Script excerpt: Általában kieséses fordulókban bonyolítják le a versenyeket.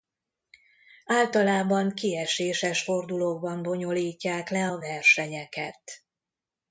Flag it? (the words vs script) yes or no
no